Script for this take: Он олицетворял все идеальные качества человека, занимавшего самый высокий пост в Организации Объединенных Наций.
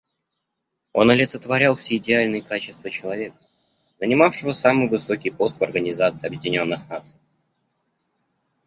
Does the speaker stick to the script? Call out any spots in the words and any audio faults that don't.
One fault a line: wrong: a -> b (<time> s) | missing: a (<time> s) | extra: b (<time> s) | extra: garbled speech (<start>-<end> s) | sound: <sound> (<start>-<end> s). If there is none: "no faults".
no faults